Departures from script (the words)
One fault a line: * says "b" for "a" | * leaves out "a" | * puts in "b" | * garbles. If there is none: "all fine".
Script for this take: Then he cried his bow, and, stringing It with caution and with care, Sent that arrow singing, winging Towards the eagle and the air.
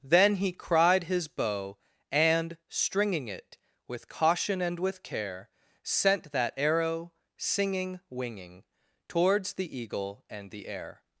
all fine